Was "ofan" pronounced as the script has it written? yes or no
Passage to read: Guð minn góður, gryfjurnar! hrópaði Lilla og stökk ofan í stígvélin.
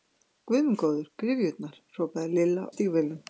no